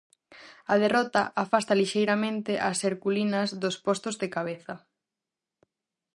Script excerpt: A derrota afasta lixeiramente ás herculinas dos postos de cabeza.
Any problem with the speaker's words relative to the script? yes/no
no